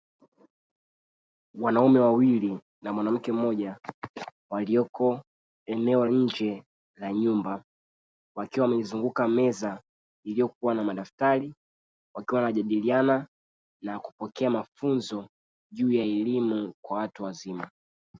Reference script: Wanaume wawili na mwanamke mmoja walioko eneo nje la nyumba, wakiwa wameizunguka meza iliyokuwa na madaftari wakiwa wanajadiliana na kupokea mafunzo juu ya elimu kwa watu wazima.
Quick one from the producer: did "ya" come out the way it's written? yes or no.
yes